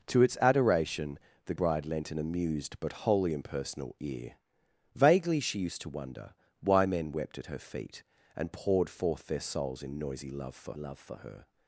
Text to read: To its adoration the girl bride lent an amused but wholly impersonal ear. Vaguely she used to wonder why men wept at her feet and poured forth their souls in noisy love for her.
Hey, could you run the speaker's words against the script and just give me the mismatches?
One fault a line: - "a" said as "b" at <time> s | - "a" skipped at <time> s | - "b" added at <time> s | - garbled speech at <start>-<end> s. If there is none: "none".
- "girl" skipped at 1.5 s
- "love for" added at 10.7 s